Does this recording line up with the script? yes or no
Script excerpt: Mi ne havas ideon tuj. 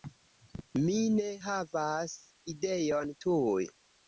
yes